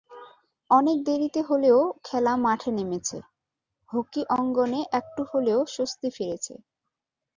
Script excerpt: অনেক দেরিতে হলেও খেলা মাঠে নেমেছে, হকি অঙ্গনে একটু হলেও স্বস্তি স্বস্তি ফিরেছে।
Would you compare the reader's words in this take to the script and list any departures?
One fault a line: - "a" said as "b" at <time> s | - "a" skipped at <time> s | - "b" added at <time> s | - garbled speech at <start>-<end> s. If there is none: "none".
- "স্বস্তি" skipped at 6.1 s